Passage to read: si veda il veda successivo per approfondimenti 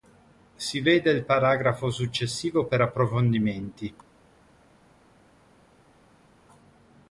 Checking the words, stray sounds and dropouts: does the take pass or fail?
fail